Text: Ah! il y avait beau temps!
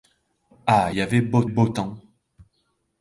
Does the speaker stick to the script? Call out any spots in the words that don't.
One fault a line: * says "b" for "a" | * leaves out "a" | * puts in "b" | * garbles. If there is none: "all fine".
* leaves out "il"
* puts in "beau"